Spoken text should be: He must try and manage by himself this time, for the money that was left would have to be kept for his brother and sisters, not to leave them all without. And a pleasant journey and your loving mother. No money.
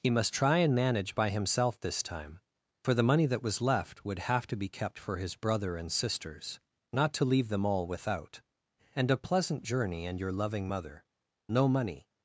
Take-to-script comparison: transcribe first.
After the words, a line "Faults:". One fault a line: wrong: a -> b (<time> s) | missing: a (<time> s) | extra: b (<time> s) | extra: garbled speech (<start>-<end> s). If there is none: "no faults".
He must try and manage by himself this time, for the money that was left would have to be kept for his brother and sisters, not to leave them all without. And a pleasant journey and your loving mother. No money.
Faults:
no faults